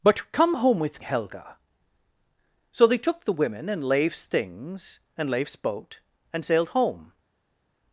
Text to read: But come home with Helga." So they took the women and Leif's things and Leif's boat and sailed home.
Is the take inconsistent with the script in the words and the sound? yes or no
no